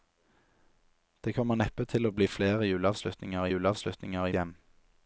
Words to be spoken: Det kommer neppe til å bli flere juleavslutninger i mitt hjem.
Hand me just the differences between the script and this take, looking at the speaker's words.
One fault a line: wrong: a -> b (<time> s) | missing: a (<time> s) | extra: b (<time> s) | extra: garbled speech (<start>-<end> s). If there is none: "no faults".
wrong: mitt -> juleavslutninger (3.5 s)